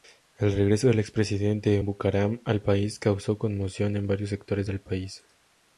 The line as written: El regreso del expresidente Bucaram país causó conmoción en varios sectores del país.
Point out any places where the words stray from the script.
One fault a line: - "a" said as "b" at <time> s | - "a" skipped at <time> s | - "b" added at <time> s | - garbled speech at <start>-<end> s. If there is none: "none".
- "al" added at 2.4 s